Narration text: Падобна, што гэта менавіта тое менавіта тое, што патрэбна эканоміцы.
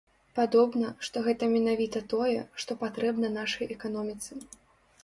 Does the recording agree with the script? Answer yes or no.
no